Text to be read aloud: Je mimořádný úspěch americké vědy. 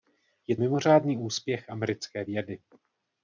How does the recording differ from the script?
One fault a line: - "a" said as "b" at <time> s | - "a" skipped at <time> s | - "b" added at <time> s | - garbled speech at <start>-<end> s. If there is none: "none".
none